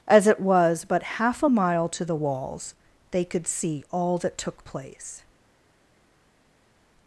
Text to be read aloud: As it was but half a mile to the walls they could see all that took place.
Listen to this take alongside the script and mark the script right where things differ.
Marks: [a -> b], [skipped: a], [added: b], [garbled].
As it was but half a mile to the walls they could see all that took place.